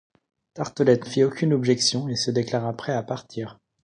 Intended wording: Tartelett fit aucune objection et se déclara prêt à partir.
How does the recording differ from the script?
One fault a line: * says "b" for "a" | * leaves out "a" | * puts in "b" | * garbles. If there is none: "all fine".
all fine